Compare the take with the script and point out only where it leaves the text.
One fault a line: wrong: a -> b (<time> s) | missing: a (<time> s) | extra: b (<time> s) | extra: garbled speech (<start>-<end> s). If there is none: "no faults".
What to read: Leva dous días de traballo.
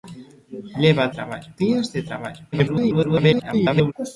wrong: dous -> traballo (1.2 s)
extra: garbled speech (2.5-3.9 s)